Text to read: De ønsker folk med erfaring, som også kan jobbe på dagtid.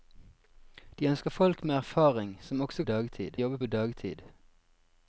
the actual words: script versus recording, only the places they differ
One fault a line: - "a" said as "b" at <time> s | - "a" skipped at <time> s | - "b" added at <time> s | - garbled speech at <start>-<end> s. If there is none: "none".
- "kan" said as "dagtid" at 2.8 s